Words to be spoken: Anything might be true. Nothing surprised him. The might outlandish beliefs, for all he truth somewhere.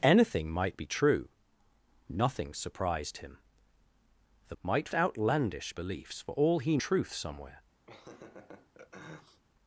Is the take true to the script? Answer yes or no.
yes